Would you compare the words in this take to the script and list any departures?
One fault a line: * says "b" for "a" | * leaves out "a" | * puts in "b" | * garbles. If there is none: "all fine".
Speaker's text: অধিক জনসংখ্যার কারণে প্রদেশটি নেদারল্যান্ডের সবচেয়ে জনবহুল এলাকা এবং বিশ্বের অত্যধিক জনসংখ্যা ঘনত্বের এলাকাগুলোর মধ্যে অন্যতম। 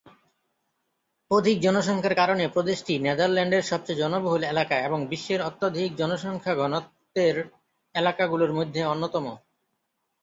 all fine